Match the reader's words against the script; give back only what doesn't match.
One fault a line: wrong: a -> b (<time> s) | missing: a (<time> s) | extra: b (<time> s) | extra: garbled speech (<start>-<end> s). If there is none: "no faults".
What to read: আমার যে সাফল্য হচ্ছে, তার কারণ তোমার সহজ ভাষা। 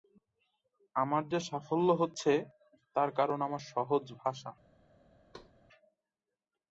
wrong: তোমার -> আমার (3.4 s)